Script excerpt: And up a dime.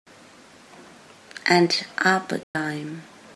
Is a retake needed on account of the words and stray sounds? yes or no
yes